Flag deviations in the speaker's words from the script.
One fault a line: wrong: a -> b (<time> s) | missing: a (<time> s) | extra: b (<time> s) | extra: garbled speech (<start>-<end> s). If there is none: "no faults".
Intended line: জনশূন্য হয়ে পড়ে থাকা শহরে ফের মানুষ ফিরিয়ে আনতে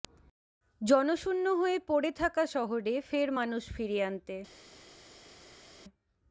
no faults